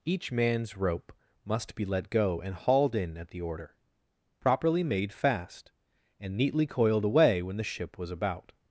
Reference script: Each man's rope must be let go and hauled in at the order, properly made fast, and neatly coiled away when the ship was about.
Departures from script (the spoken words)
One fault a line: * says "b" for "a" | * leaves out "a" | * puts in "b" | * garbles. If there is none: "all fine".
all fine